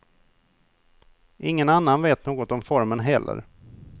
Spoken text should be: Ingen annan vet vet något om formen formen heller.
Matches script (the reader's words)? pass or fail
fail